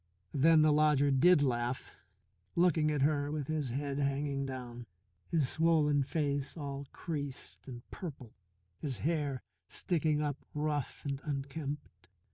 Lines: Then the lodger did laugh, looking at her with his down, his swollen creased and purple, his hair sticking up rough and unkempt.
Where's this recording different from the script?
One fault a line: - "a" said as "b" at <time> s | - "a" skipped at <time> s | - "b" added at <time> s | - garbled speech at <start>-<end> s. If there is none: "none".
- "head hanging" added at 3.7 s
- "face all" added at 6.0 s